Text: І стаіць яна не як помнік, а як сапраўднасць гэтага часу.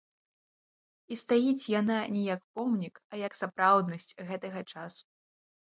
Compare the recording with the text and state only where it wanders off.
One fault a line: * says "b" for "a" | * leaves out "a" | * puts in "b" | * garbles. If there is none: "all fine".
all fine